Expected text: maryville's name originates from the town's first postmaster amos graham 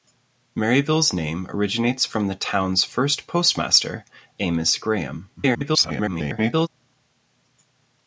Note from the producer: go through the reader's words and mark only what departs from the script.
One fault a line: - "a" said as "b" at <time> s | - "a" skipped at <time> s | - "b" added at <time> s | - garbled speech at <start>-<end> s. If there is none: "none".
- garbled speech at 5.4-6.7 s